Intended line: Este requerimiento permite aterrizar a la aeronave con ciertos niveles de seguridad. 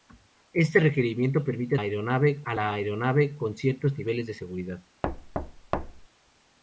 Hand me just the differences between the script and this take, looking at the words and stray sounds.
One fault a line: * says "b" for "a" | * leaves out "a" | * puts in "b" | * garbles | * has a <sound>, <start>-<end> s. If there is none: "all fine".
* says "aeronave" for "aterrizar"
* has a thud, 5.0-6.1 s